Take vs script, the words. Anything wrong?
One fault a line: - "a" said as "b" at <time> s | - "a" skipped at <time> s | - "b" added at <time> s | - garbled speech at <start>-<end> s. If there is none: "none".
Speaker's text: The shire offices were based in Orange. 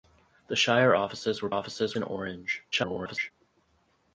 - "based" said as "offices" at 1.5 s
- garbled speech at 2.7-3.3 s